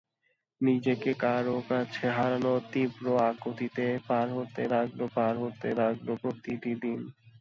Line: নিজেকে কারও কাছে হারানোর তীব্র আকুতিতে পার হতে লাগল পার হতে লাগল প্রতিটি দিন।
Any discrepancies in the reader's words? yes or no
no